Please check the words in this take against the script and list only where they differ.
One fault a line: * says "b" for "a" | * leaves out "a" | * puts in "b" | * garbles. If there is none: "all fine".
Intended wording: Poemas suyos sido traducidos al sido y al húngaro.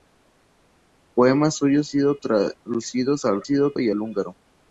all fine